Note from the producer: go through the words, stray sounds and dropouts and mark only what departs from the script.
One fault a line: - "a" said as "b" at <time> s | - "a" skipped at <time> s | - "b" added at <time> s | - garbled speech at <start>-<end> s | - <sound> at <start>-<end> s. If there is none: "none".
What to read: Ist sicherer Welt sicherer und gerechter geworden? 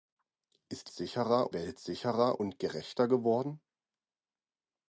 none